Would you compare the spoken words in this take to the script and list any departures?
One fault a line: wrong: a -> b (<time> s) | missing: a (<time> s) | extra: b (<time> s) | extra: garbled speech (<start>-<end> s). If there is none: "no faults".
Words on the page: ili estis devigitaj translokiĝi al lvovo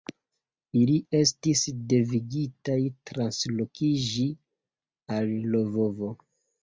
no faults